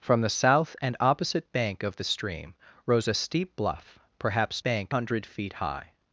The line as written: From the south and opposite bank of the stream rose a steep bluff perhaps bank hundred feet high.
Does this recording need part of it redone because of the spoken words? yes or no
no